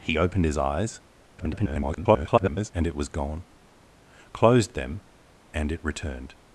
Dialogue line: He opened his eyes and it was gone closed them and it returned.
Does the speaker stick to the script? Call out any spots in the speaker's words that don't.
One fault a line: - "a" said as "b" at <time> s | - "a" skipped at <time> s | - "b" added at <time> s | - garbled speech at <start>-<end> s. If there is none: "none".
- garbled speech at 1.4-2.7 s